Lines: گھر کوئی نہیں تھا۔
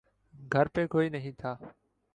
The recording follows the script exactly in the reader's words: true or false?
false